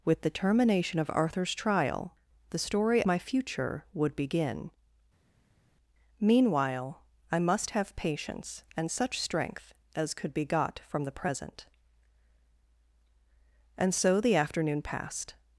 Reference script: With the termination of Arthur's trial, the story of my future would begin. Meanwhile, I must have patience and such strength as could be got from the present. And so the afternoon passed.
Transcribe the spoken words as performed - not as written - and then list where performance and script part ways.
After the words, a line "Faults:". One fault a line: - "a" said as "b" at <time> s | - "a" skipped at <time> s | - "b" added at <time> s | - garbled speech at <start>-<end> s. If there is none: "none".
With the termination of Arthur's trial, the story my future would begin. Meanwhile, I must have patience and such strength as could be got from the present. And so the afternoon passed.
Faults:
- "of" skipped at 3.0 s